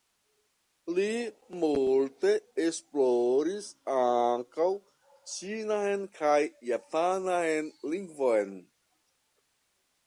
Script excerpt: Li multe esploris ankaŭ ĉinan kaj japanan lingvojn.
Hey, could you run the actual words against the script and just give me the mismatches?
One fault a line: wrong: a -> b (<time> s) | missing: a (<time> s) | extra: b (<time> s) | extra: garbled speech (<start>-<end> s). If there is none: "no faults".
no faults